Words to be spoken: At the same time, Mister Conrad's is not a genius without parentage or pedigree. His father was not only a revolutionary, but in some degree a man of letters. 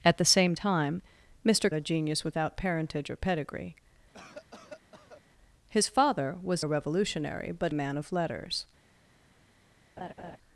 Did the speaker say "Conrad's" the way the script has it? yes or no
no